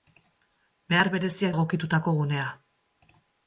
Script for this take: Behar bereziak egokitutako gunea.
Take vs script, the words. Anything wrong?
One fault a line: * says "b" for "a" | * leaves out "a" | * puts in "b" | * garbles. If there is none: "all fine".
all fine